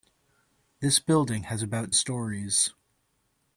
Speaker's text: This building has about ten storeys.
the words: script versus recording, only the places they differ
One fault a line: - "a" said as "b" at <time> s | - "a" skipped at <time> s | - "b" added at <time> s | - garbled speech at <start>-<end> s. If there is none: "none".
- "ten" skipped at 1.9 s